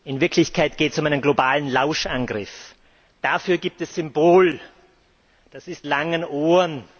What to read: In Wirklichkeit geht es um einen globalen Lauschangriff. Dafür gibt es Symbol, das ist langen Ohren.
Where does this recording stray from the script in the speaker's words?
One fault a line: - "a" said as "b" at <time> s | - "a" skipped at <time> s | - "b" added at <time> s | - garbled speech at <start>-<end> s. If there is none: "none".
none